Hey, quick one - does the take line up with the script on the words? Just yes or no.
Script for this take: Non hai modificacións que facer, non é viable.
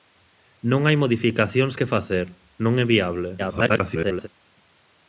no